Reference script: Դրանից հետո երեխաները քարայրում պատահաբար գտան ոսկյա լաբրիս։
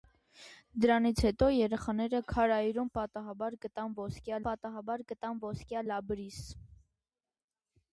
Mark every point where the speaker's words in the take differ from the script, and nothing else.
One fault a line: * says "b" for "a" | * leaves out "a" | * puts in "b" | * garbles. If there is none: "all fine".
* puts in "պատահաբար գտան ոսկյա"